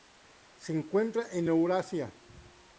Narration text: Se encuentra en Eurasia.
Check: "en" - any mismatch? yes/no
no